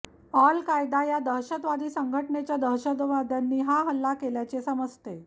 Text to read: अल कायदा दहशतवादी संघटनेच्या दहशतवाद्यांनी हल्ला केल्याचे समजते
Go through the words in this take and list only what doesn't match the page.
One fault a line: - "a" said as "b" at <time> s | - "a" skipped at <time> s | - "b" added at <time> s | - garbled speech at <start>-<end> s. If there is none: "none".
- "या" added at 1.0 s
- "हा" added at 3.6 s